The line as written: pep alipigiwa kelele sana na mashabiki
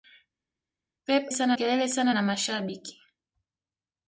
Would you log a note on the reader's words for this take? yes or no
yes